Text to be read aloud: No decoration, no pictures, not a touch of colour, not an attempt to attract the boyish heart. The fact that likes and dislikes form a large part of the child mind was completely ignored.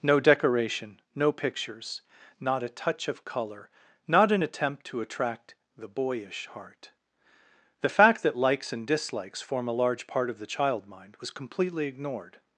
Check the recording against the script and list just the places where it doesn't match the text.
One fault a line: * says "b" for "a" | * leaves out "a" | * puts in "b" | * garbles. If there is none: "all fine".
all fine